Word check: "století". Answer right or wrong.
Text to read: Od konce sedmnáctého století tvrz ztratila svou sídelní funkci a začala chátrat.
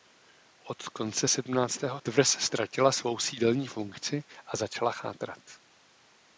wrong